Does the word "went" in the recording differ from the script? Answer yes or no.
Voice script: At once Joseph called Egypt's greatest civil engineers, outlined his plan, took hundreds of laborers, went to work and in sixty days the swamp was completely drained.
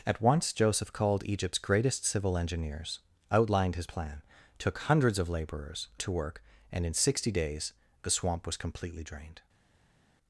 yes